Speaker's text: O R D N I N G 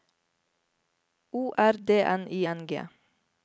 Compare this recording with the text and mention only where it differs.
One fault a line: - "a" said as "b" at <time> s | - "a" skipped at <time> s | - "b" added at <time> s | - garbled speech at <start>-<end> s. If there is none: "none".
none